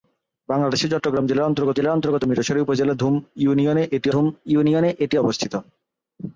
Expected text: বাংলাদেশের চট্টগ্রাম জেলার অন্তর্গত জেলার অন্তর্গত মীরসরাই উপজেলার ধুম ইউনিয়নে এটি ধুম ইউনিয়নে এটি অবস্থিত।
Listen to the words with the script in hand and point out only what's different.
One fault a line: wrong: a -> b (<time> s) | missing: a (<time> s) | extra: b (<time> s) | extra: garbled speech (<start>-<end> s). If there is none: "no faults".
no faults